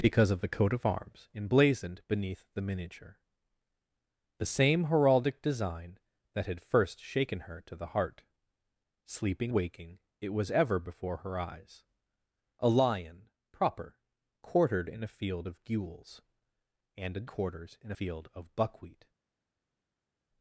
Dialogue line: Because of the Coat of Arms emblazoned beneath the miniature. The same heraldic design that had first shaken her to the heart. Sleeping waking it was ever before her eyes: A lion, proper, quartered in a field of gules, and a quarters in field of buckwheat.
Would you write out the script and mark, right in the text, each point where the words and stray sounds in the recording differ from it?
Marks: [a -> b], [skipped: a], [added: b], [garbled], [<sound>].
Because of the Coat of Arms emblazoned beneath the miniature. The same heraldic design that had first shaken her to the heart. Sleeping waking it was ever before her eyes: A lion, proper, quartered in a field of gules, and a quarters in field of buckwheat.